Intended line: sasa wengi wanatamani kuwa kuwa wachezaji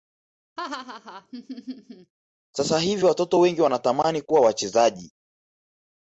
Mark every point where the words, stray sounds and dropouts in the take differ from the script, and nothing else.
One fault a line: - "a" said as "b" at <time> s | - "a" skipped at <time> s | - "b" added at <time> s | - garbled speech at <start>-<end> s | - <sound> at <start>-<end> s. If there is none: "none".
- laugh at 0.6-2.1 s
- "hivi watoto" added at 2.8 s
- "kuwa" skipped at 4.4 s